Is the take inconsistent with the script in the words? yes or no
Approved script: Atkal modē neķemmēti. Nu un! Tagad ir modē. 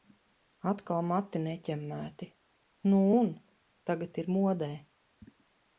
yes